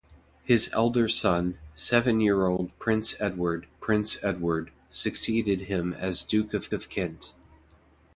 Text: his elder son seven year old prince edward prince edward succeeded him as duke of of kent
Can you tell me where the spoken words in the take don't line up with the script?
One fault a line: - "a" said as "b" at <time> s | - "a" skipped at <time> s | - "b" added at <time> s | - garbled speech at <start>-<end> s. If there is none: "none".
none